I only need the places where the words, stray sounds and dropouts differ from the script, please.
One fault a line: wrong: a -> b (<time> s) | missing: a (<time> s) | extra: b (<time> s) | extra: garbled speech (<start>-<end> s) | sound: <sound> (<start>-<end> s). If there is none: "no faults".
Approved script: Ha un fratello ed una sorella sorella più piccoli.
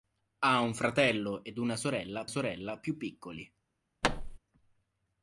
sound: thud (4.0-4.4 s)